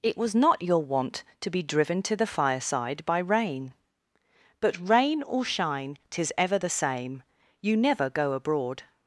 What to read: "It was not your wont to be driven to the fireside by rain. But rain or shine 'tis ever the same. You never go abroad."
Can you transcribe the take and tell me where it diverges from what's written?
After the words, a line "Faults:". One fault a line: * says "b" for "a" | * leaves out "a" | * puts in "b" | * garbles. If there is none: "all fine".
"It was not your wont to be driven to the fireside by rain. But rain or shine 'tis ever the same. You never go abroad."
Faults:
all fine